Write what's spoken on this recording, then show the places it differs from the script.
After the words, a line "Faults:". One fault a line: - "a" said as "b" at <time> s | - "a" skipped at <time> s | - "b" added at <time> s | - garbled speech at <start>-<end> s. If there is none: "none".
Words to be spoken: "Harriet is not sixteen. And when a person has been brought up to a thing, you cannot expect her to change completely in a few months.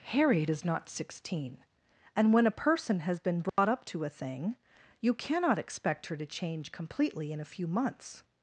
"Harriet is not sixteen. And when a person has been brought up to a thing, you cannot expect her to change completely in a few months.
Faults:
none